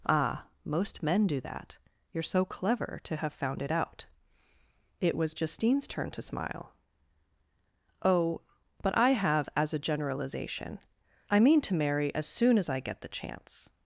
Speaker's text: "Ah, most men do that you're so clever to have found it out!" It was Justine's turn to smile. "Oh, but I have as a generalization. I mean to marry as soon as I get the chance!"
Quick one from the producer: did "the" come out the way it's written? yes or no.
yes